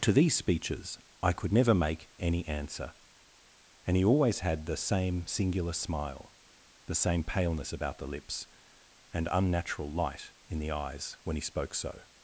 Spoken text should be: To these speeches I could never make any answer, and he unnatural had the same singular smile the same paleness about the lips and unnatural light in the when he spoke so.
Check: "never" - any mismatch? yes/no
no